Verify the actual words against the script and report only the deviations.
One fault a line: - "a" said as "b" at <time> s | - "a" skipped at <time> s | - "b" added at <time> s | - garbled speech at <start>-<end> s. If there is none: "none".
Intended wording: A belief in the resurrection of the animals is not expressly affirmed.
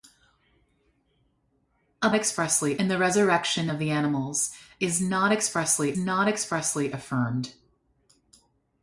- "belief" said as "expressly" at 2.1 s
- "not expressly" added at 6.0 s